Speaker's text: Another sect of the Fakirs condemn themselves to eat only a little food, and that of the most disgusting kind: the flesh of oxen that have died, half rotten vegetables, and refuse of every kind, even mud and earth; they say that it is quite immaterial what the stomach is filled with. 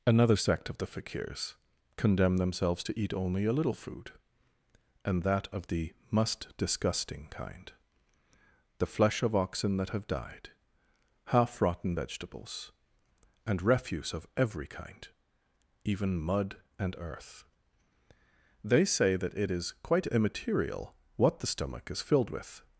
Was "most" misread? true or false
true